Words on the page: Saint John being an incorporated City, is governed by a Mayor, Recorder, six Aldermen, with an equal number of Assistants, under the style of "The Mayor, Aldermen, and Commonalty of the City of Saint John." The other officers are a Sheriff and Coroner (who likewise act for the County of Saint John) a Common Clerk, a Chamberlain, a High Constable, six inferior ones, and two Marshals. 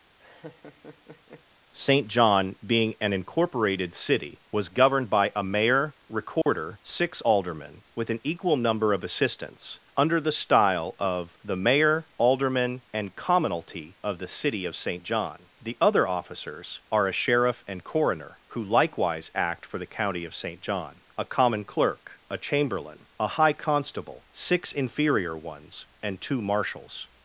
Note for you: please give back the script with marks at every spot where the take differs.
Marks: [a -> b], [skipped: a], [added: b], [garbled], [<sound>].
[laugh] Saint John being an incorporated City, [is -> was] governed by a Mayor, Recorder, [dropout] six Aldermen, with an equal number of Assistants, under the style of "The Mayor, Aldermen, and Commonalty of the City of Saint John." The other officers are a Sheriff and Coroner (who likewise act for the County of Saint John) a Common Clerk, a Chamberlain, a High Constable, six inferior ones, and two Marshals.